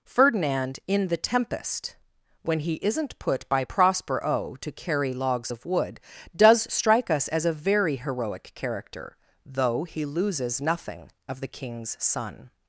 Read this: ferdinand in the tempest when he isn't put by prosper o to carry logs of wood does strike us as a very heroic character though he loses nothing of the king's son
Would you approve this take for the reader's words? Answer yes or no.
yes